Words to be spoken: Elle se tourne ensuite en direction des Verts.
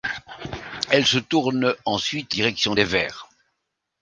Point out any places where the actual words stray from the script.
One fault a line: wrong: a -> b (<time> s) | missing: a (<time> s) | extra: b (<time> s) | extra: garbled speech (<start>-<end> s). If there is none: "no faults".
missing: en (2.4 s)